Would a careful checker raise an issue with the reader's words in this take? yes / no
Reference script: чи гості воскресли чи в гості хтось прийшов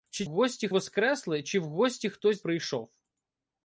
no